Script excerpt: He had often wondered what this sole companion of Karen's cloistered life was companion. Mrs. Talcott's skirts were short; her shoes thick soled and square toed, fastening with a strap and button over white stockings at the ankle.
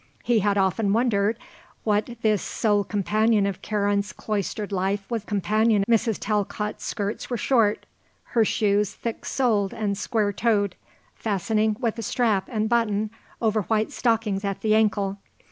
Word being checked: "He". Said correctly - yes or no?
yes